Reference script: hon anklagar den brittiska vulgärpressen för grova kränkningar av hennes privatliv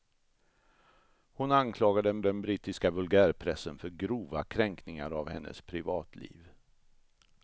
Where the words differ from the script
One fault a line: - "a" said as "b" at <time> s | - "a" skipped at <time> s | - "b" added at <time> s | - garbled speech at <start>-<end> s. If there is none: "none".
- "den" added at 2.2 s